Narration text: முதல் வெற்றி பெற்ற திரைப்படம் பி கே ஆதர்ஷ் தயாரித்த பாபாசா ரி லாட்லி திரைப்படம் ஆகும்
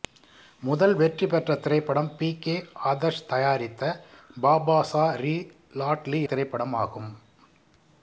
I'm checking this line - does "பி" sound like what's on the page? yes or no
yes